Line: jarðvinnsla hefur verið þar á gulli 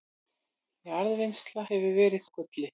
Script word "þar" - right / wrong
wrong